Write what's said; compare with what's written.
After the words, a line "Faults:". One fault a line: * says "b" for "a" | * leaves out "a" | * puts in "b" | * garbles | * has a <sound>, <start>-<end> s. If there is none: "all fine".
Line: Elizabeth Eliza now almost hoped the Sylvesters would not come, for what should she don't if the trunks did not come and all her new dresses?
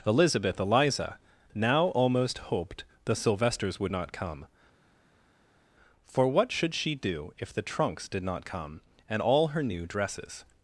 Elizabeth Eliza now almost hoped the Sylvesters would not come, for what should she do if the trunks did not come and all her new dresses?
Faults:
* says "do" for "don't"